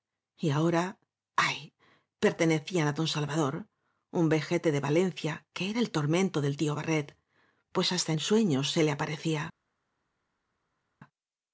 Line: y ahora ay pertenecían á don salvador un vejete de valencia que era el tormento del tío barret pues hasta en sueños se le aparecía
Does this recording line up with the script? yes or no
yes